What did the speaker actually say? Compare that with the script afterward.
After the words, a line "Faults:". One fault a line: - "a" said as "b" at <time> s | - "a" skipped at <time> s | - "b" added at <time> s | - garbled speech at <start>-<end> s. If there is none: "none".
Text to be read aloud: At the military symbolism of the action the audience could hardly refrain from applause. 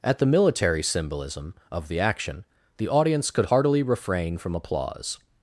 At the military symbolism of the action the audience could heartily refrain from applause.
Faults:
- "hardly" said as "heartily" at 3.4 s